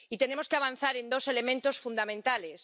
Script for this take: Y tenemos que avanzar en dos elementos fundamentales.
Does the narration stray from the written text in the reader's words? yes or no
no